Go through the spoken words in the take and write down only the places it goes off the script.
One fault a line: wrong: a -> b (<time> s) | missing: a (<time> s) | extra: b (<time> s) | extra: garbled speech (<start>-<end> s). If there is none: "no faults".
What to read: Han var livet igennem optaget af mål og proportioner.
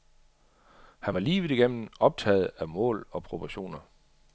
no faults